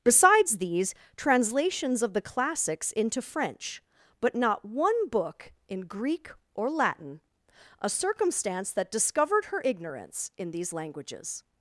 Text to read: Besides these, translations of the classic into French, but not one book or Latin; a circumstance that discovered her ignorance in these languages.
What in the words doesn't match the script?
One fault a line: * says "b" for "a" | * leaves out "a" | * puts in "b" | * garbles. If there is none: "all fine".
* says "classics" for "classic"
* puts in "in Greek"